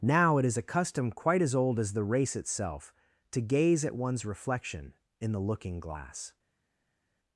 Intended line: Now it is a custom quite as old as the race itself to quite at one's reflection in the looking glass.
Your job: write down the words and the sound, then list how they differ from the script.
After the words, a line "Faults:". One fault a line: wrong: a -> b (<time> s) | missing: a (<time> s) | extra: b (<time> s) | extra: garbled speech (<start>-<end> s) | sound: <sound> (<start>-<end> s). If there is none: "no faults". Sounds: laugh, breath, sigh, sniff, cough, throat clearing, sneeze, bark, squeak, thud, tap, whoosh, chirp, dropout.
Now it is a custom quite as old as the race itself to gaze at one's reflection in the looking glass.
Faults:
wrong: quite -> gaze (3.4 s)